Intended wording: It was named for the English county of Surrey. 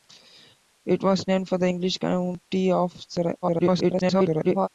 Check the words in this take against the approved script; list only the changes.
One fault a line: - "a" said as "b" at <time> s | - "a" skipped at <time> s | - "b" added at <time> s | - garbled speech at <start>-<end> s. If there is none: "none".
- garbled speech at 3.4-4.7 s